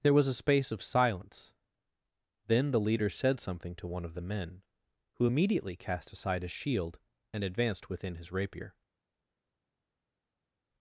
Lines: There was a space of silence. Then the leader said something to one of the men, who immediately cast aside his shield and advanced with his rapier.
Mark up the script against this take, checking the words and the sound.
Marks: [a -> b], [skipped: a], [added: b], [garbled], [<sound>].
There was a space of silence. Then the leader said something to one of the men, who immediately cast aside his shield and advanced [with -> within] his rapier.